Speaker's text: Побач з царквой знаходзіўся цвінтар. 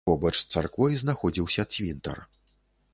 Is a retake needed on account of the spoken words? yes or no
no